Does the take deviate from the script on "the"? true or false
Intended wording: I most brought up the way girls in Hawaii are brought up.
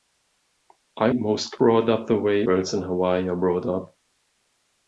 false